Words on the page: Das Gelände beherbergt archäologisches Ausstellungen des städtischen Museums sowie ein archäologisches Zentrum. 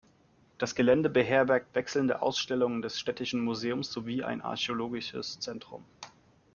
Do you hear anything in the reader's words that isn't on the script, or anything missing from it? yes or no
yes